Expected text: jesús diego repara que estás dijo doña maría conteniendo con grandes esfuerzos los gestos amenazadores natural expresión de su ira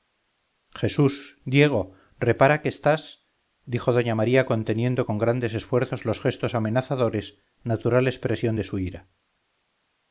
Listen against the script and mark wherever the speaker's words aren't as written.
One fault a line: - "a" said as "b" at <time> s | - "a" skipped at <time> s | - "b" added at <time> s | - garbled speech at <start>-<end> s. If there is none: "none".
none